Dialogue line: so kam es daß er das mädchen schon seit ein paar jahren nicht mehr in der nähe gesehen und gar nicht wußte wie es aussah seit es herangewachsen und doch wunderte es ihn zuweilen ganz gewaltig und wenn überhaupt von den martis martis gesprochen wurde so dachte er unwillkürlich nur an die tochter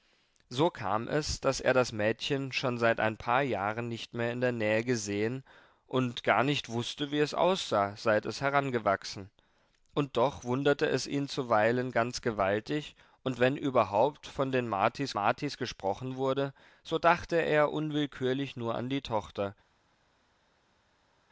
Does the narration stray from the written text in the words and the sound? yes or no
no